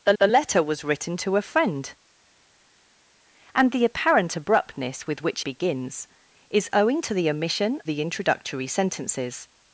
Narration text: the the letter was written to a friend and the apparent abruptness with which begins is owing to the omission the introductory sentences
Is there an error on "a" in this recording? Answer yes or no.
no